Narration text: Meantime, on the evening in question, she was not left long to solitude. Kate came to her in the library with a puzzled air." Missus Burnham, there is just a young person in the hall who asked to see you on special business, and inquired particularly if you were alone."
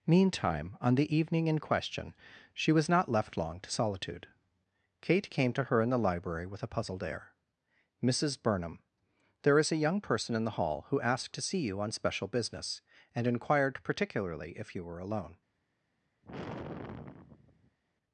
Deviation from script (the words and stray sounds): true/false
true